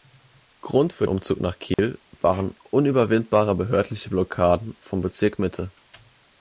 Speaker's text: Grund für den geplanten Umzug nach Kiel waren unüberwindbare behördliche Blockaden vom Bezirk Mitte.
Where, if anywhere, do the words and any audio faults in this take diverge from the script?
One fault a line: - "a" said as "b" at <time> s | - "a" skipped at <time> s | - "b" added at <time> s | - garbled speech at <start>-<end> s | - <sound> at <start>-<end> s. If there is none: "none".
- "den geplanten" skipped at 1.1 s
- dropout at 1.7-1.8 s